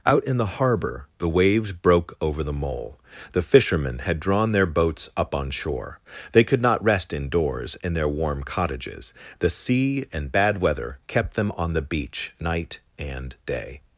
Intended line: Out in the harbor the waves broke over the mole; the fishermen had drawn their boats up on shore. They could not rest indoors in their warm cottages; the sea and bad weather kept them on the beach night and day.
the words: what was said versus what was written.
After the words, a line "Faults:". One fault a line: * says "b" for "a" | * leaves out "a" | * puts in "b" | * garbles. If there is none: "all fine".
Out in the harbor the waves broke over the mole; the fishermen had drawn their boats up on shore. They could not rest indoors in their warm cottages; the sea and bad weather kept them on the beach night and day.
Faults:
all fine